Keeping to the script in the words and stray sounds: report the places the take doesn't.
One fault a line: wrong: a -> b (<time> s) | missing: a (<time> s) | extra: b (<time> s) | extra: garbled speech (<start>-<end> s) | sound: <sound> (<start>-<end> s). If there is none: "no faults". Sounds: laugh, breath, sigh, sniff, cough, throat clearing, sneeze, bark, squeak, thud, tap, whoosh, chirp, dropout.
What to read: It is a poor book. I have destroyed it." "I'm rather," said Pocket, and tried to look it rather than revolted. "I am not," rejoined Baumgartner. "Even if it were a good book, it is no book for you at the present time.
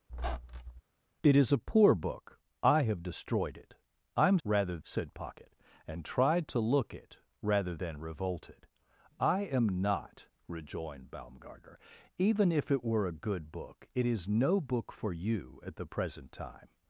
sound: squeak (0.1-0.8 s)